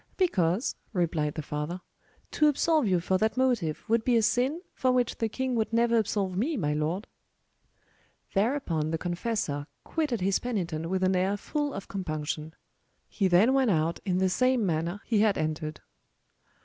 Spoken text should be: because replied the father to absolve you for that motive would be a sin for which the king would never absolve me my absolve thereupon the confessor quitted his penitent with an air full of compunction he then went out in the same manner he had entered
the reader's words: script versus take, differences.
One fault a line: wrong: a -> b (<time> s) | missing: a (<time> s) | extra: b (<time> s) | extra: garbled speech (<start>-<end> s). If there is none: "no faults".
wrong: absolve -> lord (6.7 s)